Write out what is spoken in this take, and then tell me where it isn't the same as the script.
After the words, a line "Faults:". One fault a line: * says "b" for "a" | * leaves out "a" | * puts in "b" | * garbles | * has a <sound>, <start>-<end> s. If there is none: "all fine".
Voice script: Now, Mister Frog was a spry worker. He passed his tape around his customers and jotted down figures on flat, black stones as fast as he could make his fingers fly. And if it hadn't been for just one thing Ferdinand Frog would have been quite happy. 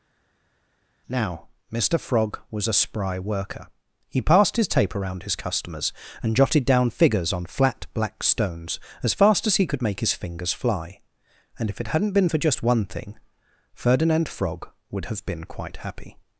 Now, Mister Frog was a spry worker. He passed his tape around his customers and jotted down figures on flat, black stones as fast as he could make his fingers fly. And if it hadn't been for just one thing Ferdinand Frog would have been quite happy.
Faults:
all fine